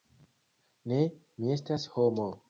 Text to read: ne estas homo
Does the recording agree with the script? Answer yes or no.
no